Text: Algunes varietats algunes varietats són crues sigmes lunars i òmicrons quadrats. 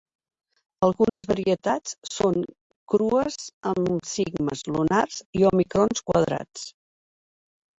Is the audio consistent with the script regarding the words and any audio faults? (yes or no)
no